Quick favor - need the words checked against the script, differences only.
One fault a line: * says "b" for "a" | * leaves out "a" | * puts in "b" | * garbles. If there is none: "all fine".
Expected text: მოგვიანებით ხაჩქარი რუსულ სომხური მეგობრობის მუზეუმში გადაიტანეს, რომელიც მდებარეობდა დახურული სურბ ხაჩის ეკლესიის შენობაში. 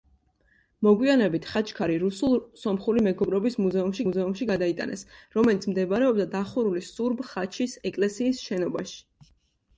* puts in "მუზეუმში"